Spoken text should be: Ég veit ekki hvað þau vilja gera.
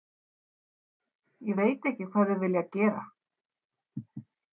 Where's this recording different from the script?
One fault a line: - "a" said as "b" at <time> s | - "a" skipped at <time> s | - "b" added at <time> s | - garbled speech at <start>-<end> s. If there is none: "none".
none